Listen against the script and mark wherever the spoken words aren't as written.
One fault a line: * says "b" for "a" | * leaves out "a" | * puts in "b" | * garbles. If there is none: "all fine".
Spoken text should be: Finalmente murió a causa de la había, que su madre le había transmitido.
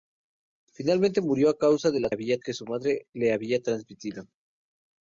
all fine